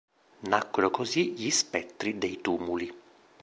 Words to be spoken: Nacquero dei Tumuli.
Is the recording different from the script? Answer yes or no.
yes